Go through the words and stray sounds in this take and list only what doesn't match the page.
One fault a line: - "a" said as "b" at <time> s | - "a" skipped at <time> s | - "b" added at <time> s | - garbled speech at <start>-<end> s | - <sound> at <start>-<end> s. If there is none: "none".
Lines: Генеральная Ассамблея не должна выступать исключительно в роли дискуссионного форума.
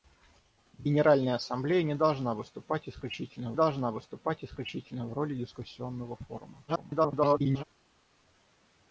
- "должна выступать исключительно" added at 3.5 s
- garbled speech at 6.7-7.6 s